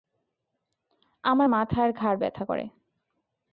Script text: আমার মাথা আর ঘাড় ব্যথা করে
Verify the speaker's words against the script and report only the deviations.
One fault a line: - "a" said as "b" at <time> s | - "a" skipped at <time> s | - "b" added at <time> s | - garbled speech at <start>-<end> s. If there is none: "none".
none